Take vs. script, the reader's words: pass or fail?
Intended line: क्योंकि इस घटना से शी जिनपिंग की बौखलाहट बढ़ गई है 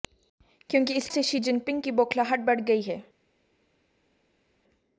fail